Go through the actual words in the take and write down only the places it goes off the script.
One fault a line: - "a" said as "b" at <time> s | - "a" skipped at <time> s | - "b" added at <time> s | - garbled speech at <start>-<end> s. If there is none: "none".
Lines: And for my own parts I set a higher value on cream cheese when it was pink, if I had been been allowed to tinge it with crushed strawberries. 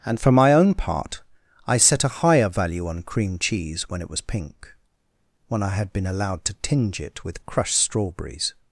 - "parts" said as "part" at 0.7 s
- "if" said as "when" at 5.5 s
- "been" skipped at 6.1 s